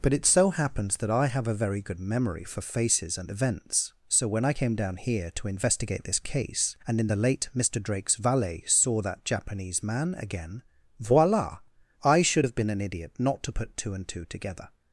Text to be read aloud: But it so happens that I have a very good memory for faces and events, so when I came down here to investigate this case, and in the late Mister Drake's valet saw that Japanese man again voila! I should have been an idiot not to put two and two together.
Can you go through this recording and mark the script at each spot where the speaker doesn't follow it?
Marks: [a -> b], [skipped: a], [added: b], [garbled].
But it so happens that I have a very good memory for faces and events, so when I came down here to investigate this case, and in the late Mister Drake's valet saw that Japanese man again voila! I should have been an idiot not to put two and two together.